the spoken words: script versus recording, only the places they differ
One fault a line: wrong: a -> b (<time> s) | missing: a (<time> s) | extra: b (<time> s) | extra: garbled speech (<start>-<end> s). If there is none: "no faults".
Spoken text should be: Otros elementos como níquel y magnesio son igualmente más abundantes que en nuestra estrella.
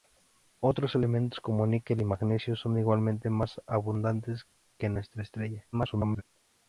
extra: garbled speech (5.7-6.2 s)